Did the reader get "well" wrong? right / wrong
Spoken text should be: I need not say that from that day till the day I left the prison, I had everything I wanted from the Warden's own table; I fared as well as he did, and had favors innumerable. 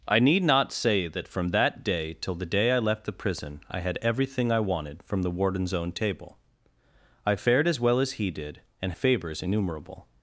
right